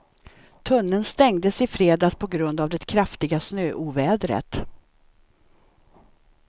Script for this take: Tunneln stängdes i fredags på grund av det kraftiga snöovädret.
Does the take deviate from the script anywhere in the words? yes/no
no